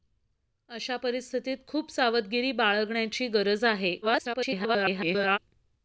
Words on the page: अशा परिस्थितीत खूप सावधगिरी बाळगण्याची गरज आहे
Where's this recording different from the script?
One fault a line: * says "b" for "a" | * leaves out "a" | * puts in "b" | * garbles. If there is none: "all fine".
* garbles